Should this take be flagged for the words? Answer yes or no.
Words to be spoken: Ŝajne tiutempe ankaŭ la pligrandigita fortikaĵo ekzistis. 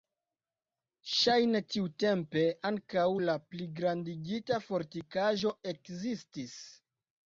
no